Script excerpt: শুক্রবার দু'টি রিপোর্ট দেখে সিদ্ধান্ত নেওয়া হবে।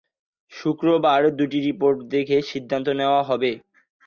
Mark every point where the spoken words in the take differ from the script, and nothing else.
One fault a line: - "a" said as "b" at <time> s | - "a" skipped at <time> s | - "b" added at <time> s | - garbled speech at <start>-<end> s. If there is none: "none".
none